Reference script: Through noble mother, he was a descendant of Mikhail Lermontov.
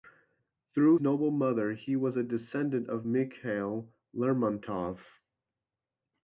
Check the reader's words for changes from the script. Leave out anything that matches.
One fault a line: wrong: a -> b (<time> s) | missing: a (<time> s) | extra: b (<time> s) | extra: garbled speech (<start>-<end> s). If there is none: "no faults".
no faults